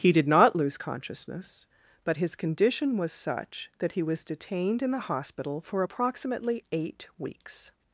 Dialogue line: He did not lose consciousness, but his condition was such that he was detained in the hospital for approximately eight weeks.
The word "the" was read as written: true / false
true